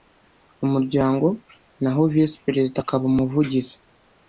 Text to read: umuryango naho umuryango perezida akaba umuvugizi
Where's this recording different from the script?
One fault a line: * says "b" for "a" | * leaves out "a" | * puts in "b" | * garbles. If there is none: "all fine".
* says "visi" for "umuryango"